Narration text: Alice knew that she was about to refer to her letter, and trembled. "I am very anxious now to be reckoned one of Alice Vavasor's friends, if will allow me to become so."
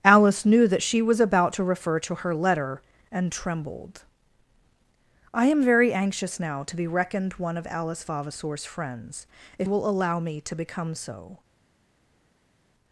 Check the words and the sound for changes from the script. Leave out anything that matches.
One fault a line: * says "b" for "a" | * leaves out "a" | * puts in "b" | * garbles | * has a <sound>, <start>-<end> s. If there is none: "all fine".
all fine